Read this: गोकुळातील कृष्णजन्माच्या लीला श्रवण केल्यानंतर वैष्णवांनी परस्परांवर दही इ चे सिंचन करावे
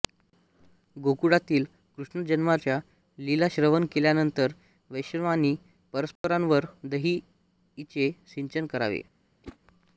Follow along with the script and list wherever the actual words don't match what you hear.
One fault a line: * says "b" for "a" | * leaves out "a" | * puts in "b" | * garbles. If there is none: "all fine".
all fine